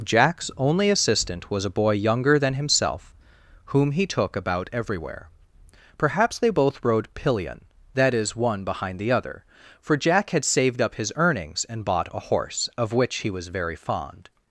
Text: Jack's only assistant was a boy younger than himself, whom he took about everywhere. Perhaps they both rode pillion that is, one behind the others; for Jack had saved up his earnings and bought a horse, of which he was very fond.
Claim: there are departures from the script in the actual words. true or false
true